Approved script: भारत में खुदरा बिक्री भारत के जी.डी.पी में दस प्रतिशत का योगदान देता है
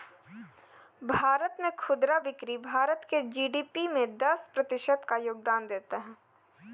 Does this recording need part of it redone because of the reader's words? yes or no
no